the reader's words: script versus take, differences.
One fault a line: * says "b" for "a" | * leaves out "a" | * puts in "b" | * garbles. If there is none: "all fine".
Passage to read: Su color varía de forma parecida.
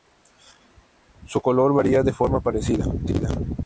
all fine